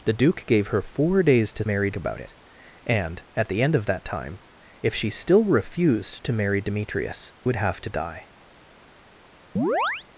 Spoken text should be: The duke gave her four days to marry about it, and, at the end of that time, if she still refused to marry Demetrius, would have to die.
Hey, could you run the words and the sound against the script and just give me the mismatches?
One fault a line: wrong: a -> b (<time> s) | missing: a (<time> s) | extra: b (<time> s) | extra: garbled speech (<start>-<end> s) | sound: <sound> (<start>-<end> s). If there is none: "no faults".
sound: chirp (9.6-10.1 s)